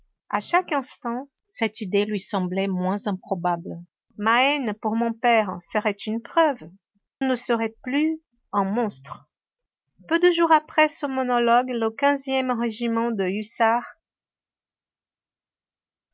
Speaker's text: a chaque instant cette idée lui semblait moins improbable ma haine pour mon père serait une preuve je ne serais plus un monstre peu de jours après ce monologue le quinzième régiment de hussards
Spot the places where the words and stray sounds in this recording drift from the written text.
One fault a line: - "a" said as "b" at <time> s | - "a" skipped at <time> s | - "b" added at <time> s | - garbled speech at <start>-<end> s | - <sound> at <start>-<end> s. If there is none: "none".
- "je" skipped at 6.6 s